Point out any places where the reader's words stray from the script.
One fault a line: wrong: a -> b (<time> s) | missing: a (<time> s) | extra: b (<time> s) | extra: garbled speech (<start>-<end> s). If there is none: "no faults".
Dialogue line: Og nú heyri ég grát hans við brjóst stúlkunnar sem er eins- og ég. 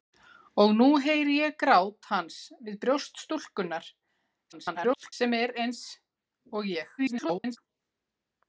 extra: garbled speech (4.5-5.1 s)
extra: garbled speech (7.0-7.6 s)